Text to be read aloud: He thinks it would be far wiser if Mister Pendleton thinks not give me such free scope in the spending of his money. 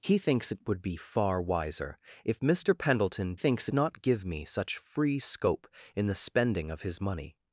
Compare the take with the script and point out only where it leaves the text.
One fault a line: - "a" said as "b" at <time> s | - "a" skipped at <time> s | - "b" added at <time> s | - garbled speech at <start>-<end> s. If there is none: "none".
none